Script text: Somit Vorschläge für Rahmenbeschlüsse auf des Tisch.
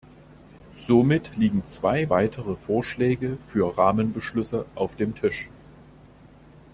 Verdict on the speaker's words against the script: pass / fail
fail